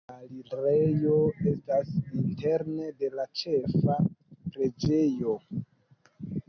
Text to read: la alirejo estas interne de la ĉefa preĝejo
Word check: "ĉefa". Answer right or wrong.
right